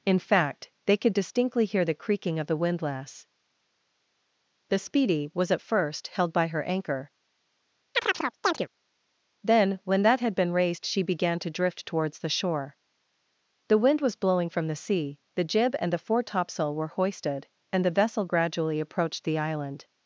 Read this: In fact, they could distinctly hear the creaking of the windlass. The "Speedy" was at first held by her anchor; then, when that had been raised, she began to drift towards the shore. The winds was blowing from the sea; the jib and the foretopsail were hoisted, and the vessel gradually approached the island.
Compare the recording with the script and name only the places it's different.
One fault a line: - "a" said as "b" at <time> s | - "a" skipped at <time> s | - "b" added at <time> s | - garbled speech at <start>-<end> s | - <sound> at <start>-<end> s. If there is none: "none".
- chirp at 7.9-8.7 s
- "winds" said as "wind" at 13.8 s